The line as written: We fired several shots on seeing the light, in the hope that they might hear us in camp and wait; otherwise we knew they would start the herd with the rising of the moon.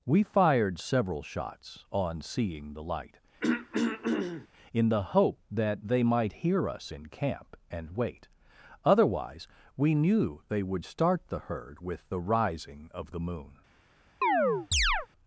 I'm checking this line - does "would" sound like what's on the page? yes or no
yes